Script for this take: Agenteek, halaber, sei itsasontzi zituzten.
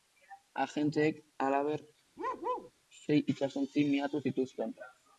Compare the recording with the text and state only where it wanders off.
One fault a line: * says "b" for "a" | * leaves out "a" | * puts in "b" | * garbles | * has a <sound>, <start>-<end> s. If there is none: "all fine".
* has a bark, 2.2-2.7 s
* puts in "miatu"